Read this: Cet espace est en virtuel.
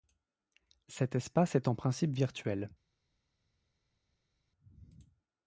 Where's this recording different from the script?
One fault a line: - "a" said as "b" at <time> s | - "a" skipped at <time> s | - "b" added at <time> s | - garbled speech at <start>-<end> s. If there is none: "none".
- "principe" added at 1.8 s